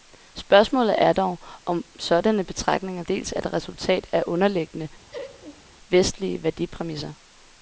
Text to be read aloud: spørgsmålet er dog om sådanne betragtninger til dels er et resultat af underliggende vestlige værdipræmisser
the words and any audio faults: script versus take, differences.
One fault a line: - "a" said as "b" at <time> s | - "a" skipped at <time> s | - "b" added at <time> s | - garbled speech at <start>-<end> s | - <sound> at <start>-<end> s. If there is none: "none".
- "til" skipped at 3.0 s
- laugh at 5.1-5.6 s